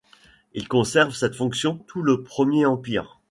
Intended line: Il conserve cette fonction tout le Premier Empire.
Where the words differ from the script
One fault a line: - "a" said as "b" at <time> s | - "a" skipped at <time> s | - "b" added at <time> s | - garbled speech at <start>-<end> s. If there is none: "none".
none